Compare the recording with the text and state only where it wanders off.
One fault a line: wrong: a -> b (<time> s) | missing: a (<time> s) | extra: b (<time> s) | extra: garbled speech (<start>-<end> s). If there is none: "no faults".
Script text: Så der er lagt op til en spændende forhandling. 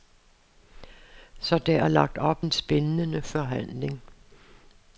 missing: til (2.5 s)